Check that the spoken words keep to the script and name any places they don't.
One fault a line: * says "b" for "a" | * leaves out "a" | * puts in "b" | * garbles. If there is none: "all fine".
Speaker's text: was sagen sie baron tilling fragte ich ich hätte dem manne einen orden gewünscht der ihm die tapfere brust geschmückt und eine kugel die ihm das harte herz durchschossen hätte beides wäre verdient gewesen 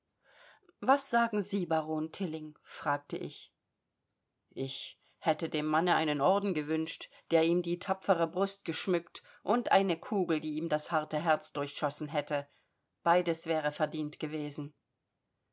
all fine